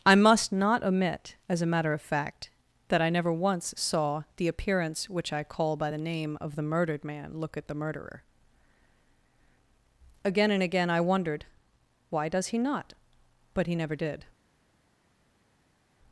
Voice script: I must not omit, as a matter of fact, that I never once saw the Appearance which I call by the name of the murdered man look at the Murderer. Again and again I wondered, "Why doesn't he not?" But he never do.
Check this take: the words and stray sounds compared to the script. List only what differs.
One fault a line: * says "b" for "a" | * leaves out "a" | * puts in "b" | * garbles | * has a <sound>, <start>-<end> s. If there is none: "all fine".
* says "does" for "doesn't"
* says "did" for "do"